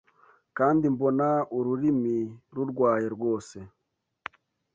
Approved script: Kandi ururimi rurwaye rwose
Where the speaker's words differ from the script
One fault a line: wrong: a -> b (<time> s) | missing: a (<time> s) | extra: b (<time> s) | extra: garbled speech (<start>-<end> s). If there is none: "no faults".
extra: mbona (0.9 s)